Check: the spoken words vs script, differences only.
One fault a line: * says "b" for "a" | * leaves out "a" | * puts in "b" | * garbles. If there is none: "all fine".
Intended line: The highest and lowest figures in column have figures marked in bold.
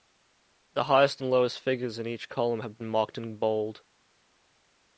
* puts in "each"
* says "been" for "figures"